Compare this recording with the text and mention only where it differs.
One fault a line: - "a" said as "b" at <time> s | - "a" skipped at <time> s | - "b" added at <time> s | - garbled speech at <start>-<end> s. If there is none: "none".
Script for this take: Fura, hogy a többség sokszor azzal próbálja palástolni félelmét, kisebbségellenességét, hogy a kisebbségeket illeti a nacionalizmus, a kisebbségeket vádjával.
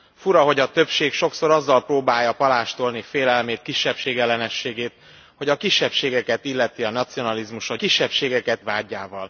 none